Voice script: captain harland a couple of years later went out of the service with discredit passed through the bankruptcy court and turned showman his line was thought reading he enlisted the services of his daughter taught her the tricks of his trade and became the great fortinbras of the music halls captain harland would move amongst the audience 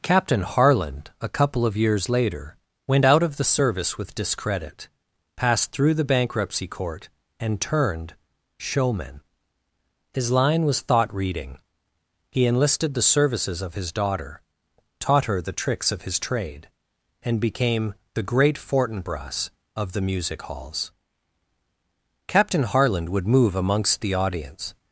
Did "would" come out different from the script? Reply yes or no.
no